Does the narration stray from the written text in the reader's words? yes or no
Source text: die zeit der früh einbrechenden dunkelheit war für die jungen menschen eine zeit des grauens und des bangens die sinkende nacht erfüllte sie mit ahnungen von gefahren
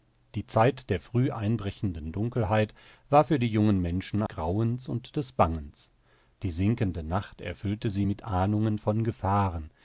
yes